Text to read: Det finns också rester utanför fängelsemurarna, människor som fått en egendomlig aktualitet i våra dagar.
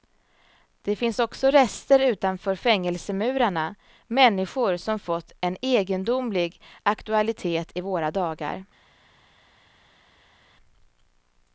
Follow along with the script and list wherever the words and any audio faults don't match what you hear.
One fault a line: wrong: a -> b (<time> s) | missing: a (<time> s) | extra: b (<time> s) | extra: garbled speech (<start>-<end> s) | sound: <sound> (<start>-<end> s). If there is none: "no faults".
no faults